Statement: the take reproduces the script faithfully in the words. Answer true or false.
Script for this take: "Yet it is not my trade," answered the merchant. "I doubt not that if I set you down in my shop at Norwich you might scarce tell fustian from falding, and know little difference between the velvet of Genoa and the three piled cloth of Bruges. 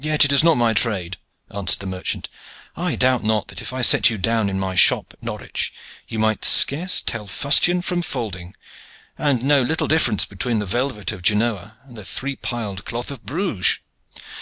true